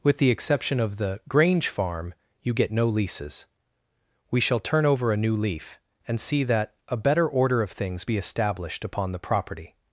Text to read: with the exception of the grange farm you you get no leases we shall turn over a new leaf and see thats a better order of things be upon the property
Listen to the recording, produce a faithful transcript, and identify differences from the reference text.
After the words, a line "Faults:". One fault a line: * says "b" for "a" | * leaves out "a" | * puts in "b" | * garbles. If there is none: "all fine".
with the exception of the grange farm you get no leases we shall turn over a new leaf and see that a better order of things be established upon the property
Faults:
* leaves out "you"
* says "that" for "thats"
* puts in "established"